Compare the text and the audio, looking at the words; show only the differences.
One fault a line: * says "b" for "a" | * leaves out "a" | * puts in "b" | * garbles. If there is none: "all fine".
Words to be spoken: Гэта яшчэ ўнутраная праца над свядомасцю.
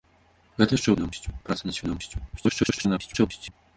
* says "свядомасцю" for "ўнутраная"
* garbles